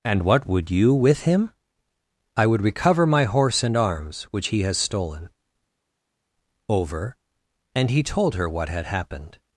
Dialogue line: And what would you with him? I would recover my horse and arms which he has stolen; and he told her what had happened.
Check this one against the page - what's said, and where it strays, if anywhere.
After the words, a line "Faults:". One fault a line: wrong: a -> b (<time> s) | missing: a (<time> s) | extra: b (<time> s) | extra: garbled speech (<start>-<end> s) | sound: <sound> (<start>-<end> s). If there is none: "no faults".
And what would you with him? I would recover my horse and arms which he has stolen; over and he told her what had happened.
Faults:
extra: over (6.7 s)